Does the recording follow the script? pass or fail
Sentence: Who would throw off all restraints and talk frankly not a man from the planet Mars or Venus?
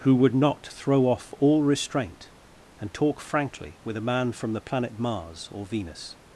fail